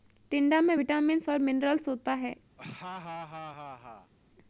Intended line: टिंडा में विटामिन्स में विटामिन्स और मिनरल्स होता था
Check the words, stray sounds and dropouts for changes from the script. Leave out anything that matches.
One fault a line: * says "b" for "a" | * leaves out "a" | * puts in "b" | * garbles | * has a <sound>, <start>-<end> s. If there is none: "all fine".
* leaves out "में विटामिन्स"
* says "है" for "था"
* has a laugh, 2.6-4.1 s